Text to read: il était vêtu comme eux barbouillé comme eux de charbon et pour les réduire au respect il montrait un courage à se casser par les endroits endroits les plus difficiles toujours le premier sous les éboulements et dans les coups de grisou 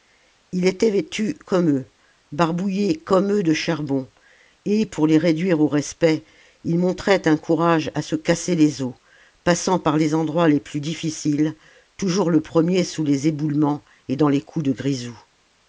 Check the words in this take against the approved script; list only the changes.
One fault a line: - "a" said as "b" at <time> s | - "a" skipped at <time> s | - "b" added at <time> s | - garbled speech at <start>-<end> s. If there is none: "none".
- "les os passant" added at 8.6 s
- "endroits" skipped at 10.5 s